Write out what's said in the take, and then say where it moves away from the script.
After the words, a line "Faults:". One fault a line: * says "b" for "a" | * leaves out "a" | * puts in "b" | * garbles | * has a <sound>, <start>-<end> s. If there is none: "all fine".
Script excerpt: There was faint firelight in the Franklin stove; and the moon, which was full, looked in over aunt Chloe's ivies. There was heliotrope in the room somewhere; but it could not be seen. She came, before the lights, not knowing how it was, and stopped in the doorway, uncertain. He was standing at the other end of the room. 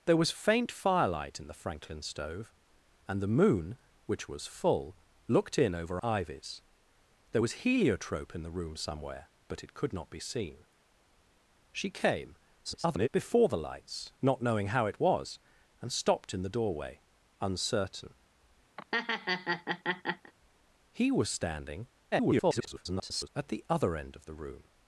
There was faint firelight in the Franklin stove; and the moon, which was full, looked in over ivies. There was heliotrope in the room somewhere; but it could not be seen. She came, [garbled] before the lights, not knowing how it was, and stopped in the doorway, uncertain. He was standing [garbled] at the other end of the room.
Faults:
* leaves out "aunt Chloe's"
* garbles
* has a laugh, 18.8-20.3 s
* garbles